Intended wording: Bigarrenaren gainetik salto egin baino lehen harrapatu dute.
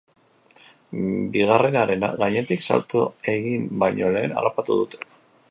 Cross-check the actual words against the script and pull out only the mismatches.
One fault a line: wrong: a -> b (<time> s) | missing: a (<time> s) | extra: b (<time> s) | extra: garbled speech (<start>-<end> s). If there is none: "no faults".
no faults